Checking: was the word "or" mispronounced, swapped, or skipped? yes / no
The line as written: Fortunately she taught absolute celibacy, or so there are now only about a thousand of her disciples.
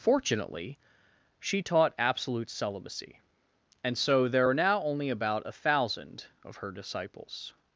yes